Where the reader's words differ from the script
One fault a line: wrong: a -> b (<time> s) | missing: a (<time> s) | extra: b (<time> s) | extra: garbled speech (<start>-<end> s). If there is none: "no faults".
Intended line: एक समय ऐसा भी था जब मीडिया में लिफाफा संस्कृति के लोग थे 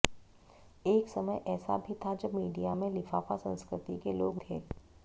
no faults